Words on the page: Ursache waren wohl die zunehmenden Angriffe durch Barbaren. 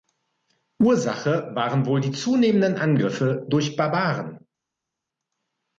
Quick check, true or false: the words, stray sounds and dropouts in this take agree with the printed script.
true